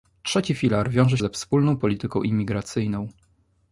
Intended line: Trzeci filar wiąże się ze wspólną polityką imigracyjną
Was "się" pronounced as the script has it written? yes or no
no